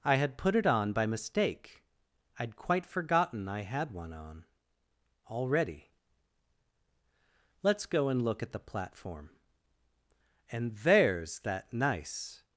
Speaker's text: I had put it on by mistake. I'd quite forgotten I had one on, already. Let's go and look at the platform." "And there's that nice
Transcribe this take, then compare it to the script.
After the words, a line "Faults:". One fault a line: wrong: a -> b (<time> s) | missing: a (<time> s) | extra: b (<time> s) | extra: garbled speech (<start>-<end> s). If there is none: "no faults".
I had put it on by mistake. I'd quite forgotten I had one on, already. Let's go and look at the platform." "And there's that nice
Faults:
no faults